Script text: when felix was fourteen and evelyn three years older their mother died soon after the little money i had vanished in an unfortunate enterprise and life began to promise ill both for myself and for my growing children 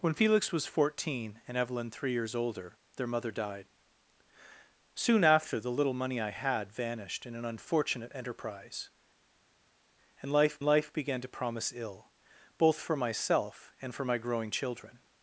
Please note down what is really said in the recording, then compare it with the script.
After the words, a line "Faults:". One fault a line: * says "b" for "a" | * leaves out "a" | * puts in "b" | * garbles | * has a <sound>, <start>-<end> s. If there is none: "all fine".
when felix was fourteen and evelyn three years older their mother died soon after the little money i had vanished in an unfortunate enterprise and life life began to promise ill both for myself and for my growing children
Faults:
* puts in "life"